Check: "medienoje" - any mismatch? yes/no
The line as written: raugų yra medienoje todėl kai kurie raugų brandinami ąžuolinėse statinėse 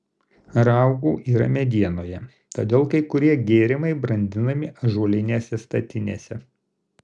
no